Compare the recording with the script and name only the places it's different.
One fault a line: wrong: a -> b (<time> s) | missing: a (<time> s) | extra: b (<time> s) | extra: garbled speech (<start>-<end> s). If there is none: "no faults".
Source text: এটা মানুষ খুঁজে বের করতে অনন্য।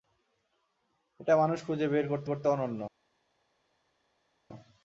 extra: করতে (2.3 s)